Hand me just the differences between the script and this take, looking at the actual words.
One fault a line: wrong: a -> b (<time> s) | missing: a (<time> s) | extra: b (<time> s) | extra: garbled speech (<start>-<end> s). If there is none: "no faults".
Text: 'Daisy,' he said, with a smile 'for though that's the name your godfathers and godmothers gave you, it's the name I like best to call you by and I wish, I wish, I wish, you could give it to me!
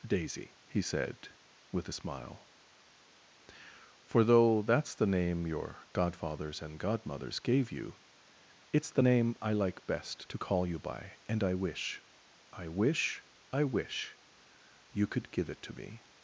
no faults